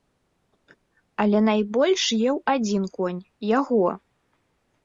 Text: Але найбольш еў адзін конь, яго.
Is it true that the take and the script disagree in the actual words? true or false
false